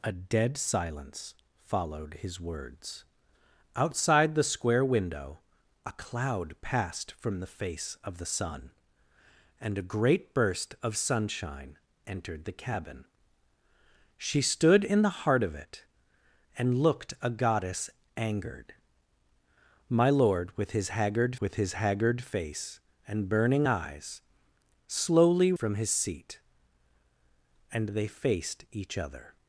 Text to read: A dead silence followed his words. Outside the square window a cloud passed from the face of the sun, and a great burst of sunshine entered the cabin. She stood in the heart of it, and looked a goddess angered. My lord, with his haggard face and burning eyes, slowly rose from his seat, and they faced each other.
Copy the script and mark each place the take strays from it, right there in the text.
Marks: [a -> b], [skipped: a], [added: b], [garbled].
A dead silence followed his words. Outside the square window a cloud passed from the face of the sun, and a great burst of sunshine entered the cabin. She stood in the heart of it, and looked a goddess angered. My lord, with his haggard [added: with his haggard] face and burning eyes, slowly [skipped: rose] from his seat, and they faced each other.